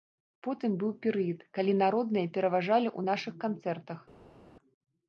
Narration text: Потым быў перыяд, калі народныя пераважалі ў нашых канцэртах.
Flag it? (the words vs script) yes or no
no